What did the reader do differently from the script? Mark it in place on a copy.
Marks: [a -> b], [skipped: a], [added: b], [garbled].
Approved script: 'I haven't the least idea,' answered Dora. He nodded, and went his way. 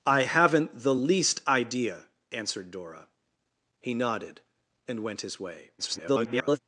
'I haven't the least idea,' answered Dora. He nodded, and went his way. [garbled]